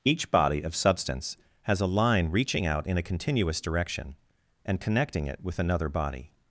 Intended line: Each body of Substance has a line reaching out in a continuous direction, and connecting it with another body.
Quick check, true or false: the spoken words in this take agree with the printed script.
true